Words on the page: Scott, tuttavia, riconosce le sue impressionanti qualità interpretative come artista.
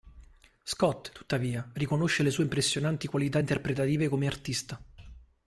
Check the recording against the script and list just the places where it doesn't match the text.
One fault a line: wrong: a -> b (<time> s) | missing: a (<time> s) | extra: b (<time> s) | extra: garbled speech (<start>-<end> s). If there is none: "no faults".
no faults